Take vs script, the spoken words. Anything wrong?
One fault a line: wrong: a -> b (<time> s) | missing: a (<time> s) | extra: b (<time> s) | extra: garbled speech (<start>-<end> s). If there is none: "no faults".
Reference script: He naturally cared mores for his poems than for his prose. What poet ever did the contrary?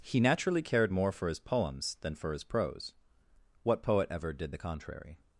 wrong: mores -> more (0.9 s)